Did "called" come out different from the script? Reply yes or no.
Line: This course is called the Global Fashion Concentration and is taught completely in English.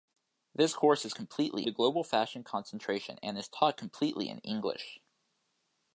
yes